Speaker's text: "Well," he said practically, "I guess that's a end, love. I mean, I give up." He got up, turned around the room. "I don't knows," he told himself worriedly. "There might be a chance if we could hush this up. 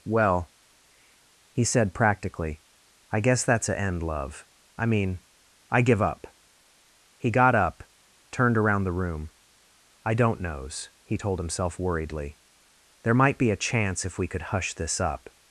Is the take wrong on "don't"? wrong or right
right